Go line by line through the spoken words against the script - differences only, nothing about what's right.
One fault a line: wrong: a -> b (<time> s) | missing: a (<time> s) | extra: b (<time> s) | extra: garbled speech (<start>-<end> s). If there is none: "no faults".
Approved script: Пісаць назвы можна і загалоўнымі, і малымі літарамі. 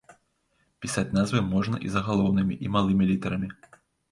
no faults